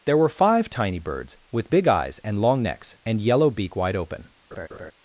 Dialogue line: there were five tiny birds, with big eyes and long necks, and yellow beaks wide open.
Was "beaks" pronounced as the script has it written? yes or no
no